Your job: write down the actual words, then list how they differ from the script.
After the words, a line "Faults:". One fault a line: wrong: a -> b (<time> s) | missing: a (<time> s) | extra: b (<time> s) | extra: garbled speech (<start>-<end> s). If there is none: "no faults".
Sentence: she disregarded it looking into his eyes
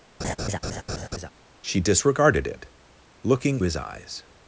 she disregarded it looking his eyes
Faults:
missing: into (3.6 s)